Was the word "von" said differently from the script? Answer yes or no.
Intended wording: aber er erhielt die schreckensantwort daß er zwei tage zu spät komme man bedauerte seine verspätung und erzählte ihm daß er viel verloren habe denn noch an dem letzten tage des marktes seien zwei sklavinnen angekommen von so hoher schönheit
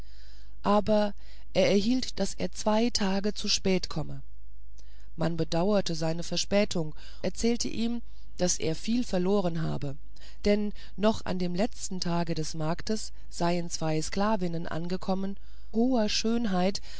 yes